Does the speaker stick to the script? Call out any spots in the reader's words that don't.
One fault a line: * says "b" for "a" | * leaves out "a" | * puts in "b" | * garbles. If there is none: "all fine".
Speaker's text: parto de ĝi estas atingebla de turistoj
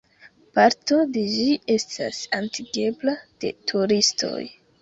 all fine